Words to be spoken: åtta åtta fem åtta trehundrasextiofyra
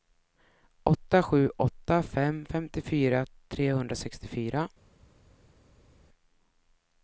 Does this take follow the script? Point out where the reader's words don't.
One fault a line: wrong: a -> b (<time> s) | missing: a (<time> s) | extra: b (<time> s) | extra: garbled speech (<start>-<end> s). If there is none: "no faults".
extra: sju (1.2 s)
wrong: åtta -> femtiofyra (2.4 s)